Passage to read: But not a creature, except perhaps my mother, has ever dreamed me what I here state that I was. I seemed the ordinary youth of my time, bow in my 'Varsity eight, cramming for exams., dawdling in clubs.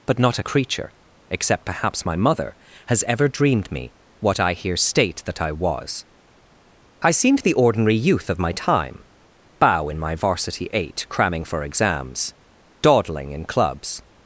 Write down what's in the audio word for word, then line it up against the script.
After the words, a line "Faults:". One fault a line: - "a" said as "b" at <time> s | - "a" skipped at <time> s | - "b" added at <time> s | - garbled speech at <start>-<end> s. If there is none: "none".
But not a creature, except perhaps my mother, has ever dreamed me what I here state that I was. I seemed the ordinary youth of my time, bow in my 'Varsity eight, cramming for exams., dawdling in clubs.
Faults:
none